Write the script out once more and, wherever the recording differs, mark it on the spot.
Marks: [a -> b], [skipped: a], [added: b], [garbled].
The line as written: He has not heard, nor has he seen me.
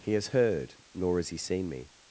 He has [skipped: not] heard, nor has he seen me.